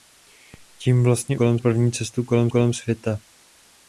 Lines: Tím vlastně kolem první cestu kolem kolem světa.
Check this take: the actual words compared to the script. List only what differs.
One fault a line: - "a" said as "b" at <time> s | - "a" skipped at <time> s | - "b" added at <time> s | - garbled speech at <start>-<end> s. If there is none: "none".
none